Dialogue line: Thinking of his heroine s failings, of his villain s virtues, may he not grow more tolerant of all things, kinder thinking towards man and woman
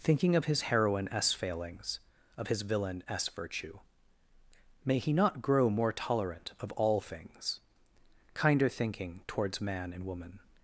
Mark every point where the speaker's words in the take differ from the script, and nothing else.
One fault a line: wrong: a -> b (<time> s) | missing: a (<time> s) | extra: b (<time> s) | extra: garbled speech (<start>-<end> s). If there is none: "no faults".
wrong: virtues -> virtue (3.3 s)